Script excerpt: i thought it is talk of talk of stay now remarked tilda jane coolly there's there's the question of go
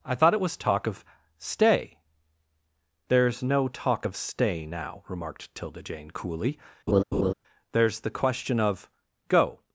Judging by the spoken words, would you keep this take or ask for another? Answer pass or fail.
fail